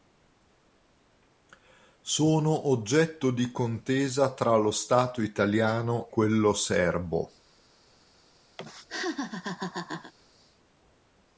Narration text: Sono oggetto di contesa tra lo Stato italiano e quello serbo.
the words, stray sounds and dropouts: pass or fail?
fail